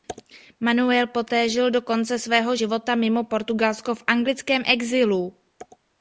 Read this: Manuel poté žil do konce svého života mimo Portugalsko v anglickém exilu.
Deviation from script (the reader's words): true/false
false